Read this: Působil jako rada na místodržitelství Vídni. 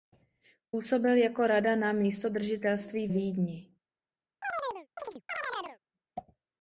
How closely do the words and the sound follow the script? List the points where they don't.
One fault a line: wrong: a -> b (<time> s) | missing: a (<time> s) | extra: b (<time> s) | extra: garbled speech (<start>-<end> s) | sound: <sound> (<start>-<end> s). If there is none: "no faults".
sound: chirp (4.4-5.8 s)